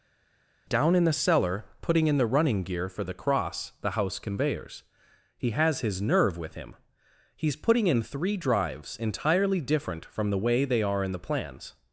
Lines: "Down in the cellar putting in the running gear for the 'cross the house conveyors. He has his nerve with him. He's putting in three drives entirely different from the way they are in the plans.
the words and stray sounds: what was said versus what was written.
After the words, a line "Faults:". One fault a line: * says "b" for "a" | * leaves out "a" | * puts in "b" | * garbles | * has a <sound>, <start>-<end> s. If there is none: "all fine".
"Down in the cellar putting in the running gear for the 'cross the house conveyors. He has his nerve with him. He's putting in three drives entirely different from the way they are in the plans.
Faults:
all fine